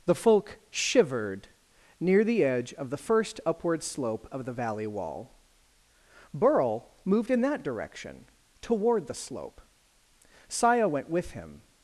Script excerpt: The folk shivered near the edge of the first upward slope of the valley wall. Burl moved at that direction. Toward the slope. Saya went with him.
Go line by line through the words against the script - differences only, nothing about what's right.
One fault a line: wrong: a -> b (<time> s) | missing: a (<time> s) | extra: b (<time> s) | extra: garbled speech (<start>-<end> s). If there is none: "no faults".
wrong: at -> in (7.3 s)